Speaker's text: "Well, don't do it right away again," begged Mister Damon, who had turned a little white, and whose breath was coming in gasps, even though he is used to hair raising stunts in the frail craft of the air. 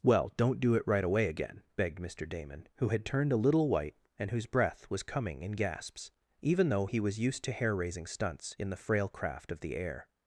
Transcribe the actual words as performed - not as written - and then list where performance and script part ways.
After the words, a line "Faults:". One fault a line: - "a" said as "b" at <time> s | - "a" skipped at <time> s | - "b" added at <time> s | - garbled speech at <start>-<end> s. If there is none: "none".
"Well, don't do it right away again," begged Mister Damon, who had turned a little white, and whose breath was coming in gasps, even though he was used to hair raising stunts in the frail craft of the air.
Faults:
- "is" said as "was" at 7.0 s